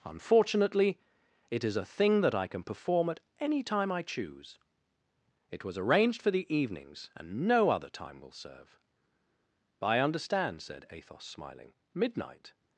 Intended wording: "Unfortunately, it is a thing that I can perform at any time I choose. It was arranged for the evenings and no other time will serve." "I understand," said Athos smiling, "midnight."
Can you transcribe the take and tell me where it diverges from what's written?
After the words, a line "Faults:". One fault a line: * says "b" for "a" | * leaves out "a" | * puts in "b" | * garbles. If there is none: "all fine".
"Unfortunately, it is a thing that I can perform at any time I choose. It was arranged for the evenings and no other time will serve." "I understand," said Athos smiling, "midnight."
Faults:
all fine